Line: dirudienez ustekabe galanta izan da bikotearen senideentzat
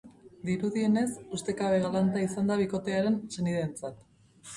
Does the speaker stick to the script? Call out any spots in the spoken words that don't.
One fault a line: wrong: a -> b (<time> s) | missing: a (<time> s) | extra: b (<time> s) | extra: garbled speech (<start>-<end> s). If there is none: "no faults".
no faults